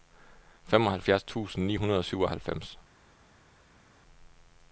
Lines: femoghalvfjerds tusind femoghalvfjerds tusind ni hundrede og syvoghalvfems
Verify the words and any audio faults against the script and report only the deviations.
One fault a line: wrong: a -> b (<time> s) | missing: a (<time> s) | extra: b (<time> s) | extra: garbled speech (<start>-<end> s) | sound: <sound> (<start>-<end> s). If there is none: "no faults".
missing: femoghalvfjerds tusind (1.6 s)